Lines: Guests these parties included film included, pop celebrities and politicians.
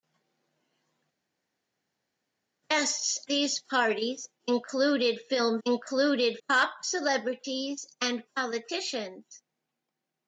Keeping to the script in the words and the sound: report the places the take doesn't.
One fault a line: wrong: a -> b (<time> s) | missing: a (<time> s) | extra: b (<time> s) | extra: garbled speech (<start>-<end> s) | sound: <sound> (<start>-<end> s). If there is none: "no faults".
no faults